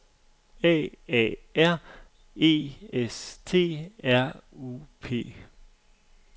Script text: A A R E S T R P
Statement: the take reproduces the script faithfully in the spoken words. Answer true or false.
false